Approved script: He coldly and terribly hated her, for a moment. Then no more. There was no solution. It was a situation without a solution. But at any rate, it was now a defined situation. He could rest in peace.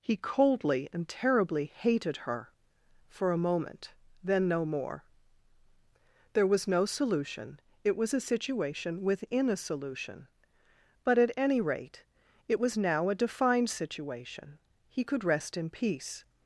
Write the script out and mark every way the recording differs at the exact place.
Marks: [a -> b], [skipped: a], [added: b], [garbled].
He coldly and terribly hated her, for a moment. Then no more. There was no solution. It was a situation [without -> within] a solution. But at any rate, it was now a defined situation. He could rest in peace.